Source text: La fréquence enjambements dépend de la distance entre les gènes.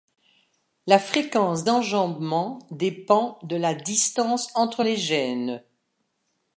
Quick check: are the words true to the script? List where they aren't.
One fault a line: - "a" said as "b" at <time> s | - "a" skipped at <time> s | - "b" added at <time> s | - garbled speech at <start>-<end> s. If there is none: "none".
none